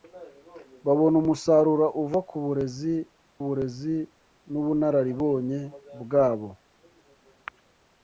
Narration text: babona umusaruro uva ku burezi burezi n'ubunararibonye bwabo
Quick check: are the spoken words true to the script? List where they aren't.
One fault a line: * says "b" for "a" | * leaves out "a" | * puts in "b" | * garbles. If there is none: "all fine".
all fine